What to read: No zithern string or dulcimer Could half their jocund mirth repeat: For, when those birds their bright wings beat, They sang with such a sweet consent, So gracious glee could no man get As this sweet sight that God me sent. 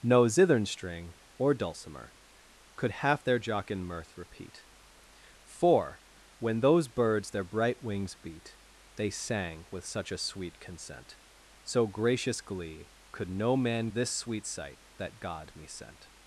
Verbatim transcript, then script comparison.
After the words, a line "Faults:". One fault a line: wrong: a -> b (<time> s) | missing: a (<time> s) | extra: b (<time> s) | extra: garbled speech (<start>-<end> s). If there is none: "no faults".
No zithern string or dulcimer Could half their jocund mirth repeat: For, when those birds their bright wings beat, They sang with such a sweet consent, So gracious glee could no man this sweet sight that God me sent.
Faults:
missing: get As (13.9 s)